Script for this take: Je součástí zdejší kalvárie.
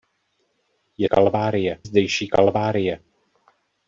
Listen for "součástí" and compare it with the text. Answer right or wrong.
wrong